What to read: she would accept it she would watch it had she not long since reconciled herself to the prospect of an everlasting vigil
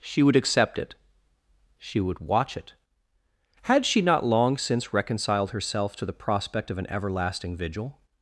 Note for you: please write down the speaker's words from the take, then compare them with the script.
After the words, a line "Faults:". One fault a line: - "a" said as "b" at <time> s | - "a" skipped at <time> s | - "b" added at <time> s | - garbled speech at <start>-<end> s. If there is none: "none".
she would accept it she would watch it had she not long since reconciled herself to the prospect of an everlasting vigil
Faults:
none